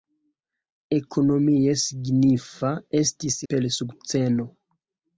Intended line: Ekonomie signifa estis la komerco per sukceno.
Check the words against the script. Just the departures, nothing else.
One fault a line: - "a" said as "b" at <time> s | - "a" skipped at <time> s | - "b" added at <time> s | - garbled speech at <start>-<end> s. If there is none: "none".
- "la komerco" skipped at 3.4 s